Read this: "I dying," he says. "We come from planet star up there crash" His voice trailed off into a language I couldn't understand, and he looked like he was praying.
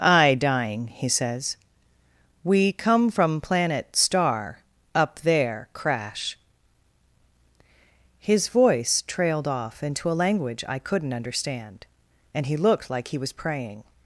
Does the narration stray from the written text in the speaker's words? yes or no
no